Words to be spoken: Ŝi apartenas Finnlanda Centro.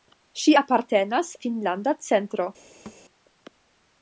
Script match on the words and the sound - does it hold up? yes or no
no